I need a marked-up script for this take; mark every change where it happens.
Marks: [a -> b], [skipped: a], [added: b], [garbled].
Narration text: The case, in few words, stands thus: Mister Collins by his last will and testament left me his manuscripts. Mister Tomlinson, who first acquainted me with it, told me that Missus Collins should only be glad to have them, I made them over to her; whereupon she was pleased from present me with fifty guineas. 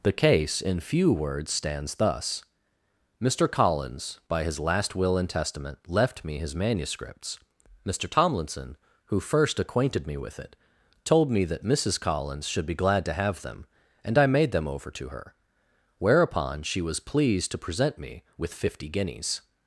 The case, in few words, stands thus: Mister Collins by his last will and testament left me his manuscripts. Mister Tomlinson, who first acquainted me with it, told me that Missus Collins should [skipped: only] be glad to have them, [added: and] I made them over to her; whereupon she was pleased [from -> to] present me with fifty guineas.